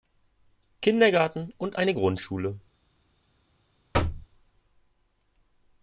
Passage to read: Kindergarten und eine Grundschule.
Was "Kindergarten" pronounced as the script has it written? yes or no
yes